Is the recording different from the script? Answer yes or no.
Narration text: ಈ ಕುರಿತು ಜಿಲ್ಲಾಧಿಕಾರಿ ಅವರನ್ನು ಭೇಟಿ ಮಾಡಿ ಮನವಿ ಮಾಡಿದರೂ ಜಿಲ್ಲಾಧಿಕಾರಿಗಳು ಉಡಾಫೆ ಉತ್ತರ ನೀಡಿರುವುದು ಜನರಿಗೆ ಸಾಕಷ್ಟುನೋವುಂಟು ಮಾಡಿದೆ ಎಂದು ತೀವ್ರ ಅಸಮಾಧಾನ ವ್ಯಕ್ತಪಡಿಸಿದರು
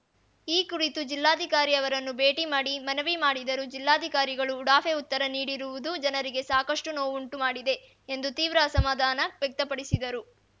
no